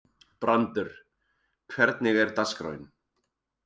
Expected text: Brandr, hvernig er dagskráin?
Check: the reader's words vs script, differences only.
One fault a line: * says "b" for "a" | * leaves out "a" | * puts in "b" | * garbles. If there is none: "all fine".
all fine